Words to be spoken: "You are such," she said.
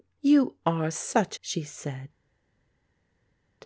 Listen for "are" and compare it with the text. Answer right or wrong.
right